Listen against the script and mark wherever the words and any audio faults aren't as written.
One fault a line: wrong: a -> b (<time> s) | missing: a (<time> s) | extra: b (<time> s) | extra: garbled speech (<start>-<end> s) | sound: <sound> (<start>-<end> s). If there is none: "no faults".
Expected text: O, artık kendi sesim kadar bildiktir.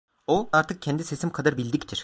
no faults